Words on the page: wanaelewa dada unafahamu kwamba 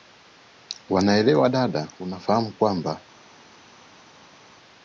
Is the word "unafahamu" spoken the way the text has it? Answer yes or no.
yes